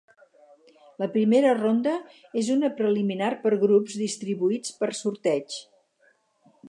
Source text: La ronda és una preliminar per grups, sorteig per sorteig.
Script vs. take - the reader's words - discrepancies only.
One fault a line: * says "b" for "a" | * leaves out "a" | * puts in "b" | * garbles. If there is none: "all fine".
* puts in "primera"
* says "distribuïts" for "sorteig"